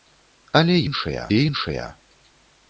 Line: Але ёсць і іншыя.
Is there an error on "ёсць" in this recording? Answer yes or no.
yes